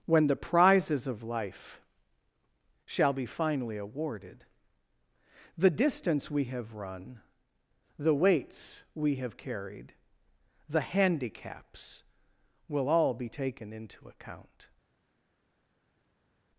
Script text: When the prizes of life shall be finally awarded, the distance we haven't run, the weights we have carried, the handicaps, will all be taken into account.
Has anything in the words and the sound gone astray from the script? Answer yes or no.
yes